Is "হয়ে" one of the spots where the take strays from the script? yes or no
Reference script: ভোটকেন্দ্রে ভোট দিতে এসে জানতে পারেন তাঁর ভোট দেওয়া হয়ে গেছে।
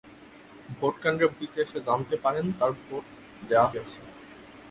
yes